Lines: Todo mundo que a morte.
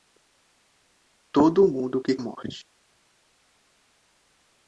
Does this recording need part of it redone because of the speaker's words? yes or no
no